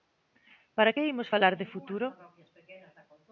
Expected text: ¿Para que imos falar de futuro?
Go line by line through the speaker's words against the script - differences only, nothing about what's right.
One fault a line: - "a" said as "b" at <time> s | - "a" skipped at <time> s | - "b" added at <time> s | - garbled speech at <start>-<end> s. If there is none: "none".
none